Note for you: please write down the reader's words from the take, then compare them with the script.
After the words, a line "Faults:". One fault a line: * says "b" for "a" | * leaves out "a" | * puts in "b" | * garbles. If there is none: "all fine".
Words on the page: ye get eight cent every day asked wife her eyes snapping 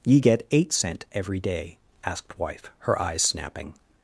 ye get eight cent every day asked wife her eyes snapping
Faults:
all fine